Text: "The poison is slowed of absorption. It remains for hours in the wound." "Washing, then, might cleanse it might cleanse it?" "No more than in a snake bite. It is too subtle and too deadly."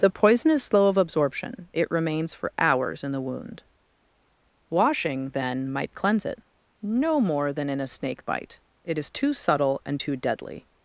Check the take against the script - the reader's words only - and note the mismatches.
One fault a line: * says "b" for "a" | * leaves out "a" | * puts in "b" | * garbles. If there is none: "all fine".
* says "slow" for "slowed"
* leaves out "might cleanse it"